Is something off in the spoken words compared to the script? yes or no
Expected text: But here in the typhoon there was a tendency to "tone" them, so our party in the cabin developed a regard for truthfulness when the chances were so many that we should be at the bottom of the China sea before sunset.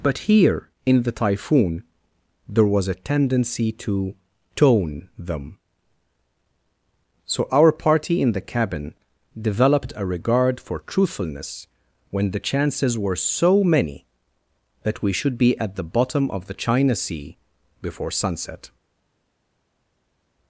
no